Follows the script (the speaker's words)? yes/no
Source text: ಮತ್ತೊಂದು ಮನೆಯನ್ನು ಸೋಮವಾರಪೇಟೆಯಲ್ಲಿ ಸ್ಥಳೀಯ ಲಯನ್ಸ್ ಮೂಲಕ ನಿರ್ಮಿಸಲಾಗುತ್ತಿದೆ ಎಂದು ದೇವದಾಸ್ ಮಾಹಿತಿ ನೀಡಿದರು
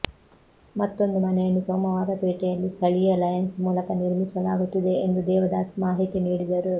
yes